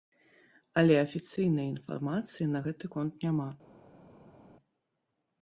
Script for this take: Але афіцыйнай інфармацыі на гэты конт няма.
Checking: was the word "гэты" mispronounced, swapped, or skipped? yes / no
no